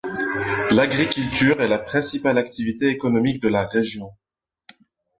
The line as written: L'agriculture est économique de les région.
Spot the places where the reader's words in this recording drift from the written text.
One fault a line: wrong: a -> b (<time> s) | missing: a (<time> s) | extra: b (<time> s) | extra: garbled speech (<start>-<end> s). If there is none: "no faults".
extra: la principale activité (1.7 s)
wrong: les -> la (3.5 s)